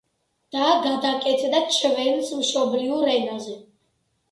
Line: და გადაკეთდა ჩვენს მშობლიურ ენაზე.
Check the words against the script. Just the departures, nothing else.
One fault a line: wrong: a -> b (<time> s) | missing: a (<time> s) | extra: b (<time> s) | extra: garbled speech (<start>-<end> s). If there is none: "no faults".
no faults